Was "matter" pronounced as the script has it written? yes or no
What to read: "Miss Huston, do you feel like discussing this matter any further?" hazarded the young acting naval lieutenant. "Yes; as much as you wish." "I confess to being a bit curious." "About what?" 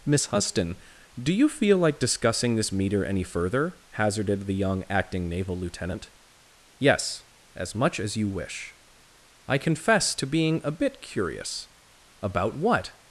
no